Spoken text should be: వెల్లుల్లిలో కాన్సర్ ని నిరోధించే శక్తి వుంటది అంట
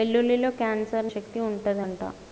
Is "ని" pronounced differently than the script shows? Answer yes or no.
yes